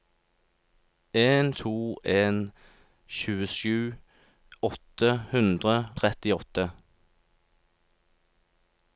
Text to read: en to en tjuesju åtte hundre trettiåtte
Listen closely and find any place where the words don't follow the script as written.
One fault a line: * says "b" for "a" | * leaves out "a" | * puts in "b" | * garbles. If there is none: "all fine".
all fine